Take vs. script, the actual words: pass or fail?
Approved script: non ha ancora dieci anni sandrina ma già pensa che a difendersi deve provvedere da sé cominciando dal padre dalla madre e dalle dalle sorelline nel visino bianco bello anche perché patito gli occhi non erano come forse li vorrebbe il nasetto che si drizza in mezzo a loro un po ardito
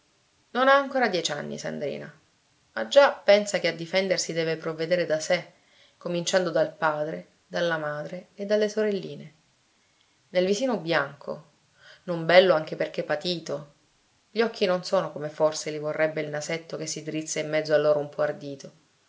fail